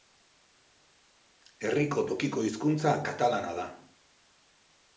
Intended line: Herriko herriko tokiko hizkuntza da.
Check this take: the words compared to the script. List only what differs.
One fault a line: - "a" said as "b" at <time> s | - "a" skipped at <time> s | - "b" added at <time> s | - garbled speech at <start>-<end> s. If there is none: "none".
- "herriko" skipped at 2.0 s
- "katalana" added at 3.1 s